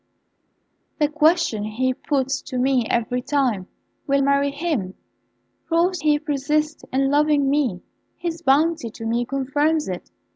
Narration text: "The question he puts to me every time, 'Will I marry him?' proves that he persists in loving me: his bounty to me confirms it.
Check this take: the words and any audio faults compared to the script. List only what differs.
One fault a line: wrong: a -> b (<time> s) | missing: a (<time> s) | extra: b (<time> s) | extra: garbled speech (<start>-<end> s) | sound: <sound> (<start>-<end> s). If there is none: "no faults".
missing: I (4.2 s)
missing: that (6.0 s)